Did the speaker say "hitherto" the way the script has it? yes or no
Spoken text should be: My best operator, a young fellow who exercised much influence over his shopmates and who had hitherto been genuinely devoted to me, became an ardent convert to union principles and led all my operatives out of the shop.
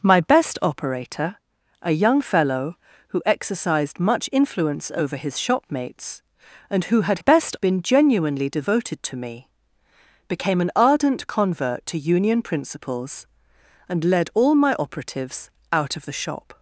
no